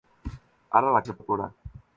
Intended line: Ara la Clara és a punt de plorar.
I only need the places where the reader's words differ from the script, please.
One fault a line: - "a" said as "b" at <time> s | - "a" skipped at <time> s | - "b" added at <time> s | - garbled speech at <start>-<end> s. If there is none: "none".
- "Clara" skipped at 1.0 s
- "punt" skipped at 1.1 s